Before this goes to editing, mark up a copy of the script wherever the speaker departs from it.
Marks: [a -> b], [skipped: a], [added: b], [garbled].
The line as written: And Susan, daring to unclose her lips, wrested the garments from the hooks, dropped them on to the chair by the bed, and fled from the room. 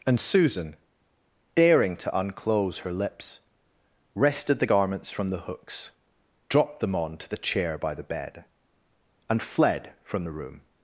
And Susan, daring to unclose her lips, wrested the garments from the hooks, dropped them on to the chair by the bed, and fled from the room.